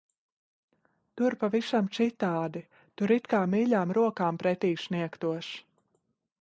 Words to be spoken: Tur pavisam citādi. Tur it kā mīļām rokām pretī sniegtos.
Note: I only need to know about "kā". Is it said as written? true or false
true